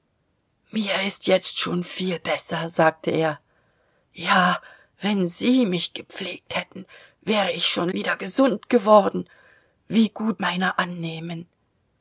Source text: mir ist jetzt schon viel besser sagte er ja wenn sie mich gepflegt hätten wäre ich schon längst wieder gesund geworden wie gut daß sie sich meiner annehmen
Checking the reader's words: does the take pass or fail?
fail